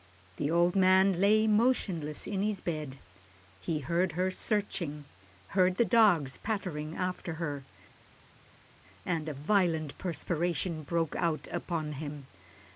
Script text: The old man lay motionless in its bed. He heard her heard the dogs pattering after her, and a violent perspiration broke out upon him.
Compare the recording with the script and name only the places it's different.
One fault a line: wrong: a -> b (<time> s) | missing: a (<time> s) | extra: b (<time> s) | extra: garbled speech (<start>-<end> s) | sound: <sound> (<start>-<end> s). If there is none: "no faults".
wrong: its -> his (2.4 s)
extra: searching (4.3 s)